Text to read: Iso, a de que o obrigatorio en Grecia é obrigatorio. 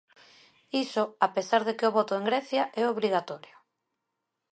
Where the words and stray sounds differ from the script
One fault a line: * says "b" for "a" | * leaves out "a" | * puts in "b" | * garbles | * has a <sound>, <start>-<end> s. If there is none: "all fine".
* puts in "pesar"
* says "voto" for "obrigatorio"